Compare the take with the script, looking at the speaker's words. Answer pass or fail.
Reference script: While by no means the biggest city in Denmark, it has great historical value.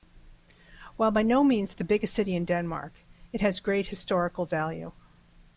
pass